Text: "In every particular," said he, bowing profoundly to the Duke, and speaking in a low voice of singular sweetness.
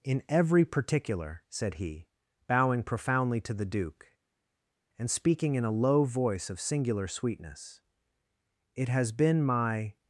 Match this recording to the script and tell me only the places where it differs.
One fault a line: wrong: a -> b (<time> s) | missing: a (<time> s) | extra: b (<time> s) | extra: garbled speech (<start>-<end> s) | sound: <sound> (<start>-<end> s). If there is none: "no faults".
extra: It has been my (8.8 s)